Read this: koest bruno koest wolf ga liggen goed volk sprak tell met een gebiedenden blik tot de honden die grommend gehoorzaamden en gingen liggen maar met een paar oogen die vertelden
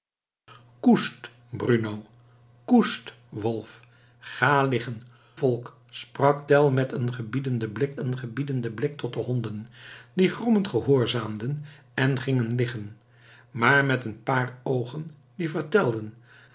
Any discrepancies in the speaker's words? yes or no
yes